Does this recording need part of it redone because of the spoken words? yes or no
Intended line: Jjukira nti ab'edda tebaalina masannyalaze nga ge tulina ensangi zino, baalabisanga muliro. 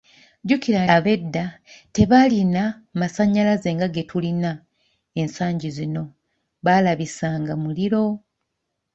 yes